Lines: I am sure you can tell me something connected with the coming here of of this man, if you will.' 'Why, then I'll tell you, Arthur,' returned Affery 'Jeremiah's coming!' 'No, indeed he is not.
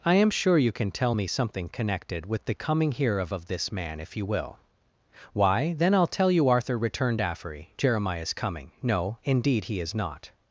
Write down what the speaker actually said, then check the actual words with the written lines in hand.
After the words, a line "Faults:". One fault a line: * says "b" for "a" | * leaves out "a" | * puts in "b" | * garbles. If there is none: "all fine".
I am sure you can tell me something connected with the coming here of of this man, if you will.' 'Why, then I'll tell you, Arthur,' returned Affery 'Jeremiah's coming!' 'No, indeed he is not.
Faults:
all fine